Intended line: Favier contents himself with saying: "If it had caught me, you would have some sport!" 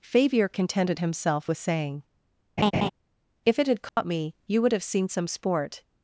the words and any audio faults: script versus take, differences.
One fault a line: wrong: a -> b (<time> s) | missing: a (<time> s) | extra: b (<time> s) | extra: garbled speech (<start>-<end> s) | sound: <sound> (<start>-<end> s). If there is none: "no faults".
wrong: contents -> contented (0.5 s)
sound: laugh (2.6-2.9 s)
sound: dropout (3.9-4.0 s)
extra: seen (4.8 s)